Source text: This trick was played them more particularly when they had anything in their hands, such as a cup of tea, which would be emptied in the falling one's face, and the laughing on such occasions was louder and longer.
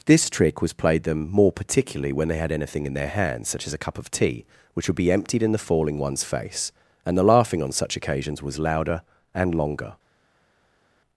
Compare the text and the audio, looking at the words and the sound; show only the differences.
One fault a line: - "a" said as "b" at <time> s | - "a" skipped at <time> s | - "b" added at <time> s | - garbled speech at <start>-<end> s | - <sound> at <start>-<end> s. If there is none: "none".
none